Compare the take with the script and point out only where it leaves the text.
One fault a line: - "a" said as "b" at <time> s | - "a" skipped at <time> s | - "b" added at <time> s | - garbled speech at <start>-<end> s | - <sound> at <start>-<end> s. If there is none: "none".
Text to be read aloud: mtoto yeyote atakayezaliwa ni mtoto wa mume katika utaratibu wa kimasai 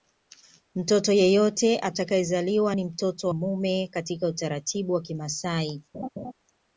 - "wa" skipped at 3.3 s
- laugh at 5.9-6.3 s